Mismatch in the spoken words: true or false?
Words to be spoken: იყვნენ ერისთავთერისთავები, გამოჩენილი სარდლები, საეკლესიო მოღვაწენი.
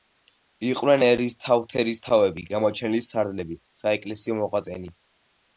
false